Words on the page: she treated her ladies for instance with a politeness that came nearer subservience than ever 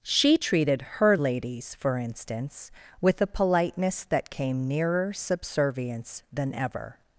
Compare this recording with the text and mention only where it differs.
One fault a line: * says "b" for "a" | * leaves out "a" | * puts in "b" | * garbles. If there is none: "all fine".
all fine